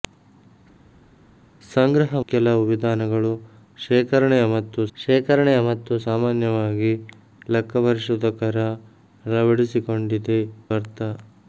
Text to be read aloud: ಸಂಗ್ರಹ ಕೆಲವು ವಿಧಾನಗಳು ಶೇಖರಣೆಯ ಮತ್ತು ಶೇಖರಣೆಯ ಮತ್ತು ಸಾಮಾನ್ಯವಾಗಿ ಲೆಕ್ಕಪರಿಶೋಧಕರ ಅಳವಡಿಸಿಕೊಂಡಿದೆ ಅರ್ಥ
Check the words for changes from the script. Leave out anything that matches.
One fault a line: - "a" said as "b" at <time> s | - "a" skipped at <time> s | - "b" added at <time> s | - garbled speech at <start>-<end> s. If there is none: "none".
none